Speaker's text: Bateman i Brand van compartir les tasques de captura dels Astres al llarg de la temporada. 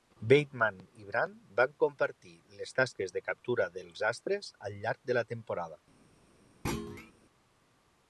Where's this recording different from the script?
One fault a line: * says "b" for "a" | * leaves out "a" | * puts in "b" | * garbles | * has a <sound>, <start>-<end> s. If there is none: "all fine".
* has a thud, 6.6-7.1 s